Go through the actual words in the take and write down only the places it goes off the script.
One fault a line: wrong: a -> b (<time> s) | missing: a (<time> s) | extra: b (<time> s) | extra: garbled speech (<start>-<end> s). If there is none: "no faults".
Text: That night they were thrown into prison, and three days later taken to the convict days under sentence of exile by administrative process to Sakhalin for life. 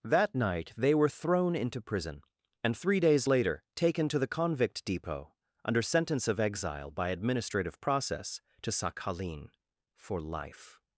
wrong: days -> depot (4.8 s)